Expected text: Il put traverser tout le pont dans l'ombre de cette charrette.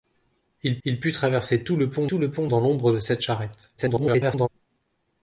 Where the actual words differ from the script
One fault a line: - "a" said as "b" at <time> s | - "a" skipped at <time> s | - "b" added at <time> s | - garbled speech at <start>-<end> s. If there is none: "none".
- "il" added at 0.8 s
- "tout le pont" added at 2.1 s
- garbled speech at 3.8-4.5 s